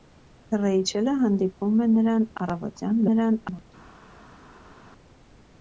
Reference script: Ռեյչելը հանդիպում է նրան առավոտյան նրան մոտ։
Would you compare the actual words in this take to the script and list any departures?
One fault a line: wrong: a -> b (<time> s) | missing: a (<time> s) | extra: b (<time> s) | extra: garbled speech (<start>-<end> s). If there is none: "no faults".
no faults